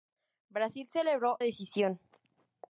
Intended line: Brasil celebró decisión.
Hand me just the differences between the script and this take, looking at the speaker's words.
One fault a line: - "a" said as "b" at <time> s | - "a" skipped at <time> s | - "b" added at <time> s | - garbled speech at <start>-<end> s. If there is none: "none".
none